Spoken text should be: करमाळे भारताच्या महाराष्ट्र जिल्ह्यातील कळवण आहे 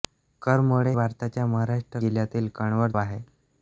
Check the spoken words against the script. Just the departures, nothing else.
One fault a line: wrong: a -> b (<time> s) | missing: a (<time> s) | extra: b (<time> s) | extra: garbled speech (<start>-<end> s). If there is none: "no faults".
no faults